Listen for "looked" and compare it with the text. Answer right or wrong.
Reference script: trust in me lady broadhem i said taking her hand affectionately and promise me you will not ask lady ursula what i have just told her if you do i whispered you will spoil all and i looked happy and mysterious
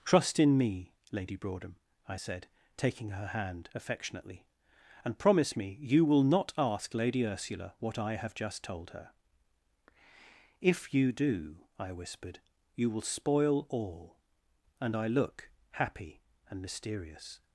wrong